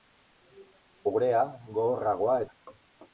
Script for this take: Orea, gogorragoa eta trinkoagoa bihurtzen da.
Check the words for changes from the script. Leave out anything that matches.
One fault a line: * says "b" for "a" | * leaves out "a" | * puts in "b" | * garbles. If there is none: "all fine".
* leaves out "eta trinkoagoa bihurtzen"